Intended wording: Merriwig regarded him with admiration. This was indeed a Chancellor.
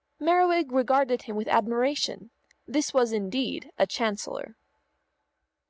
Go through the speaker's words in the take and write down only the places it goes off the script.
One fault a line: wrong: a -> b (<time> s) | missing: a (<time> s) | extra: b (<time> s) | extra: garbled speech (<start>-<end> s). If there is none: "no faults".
no faults